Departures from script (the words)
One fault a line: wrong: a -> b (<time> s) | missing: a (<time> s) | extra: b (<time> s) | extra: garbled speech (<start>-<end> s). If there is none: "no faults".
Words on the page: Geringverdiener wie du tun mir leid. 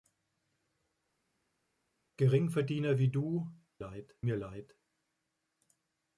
wrong: tun -> leid (3.8 s)